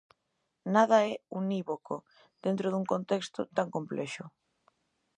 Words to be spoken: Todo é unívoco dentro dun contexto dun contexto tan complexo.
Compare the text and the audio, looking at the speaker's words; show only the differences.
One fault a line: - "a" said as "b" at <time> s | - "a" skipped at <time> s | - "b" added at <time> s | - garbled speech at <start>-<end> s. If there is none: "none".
- "Todo" said as "Nada" at 0.8 s
- "dun contexto" skipped at 3.4 s